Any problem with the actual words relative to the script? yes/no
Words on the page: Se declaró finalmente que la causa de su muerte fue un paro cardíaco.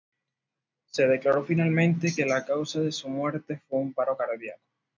no